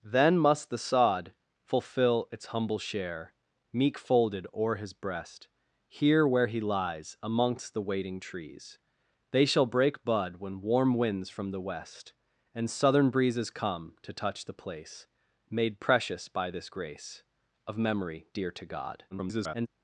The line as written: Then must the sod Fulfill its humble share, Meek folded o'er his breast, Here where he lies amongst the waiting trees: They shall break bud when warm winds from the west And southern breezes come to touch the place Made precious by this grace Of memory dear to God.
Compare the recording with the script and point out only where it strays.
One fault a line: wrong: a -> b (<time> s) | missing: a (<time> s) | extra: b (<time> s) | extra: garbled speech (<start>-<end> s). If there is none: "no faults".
extra: garbled speech (19.1-19.7 s)